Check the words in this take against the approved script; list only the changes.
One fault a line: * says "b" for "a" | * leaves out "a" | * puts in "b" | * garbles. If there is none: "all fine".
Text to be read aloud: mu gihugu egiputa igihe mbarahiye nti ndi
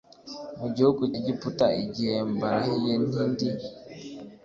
all fine